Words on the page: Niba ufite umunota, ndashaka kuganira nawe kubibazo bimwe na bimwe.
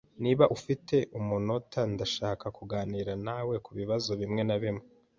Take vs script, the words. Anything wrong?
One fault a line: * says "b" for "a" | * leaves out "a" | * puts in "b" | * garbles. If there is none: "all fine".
all fine